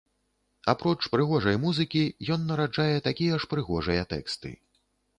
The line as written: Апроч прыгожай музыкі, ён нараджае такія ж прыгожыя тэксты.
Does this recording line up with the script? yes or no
yes